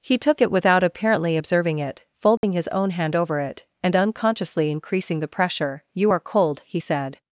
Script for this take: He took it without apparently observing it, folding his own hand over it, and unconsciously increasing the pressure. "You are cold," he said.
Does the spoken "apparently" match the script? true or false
true